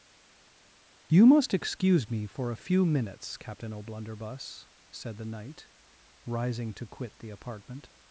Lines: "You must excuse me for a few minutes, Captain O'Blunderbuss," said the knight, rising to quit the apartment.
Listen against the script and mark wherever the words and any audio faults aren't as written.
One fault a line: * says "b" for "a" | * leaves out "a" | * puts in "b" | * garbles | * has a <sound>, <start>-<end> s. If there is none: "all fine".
all fine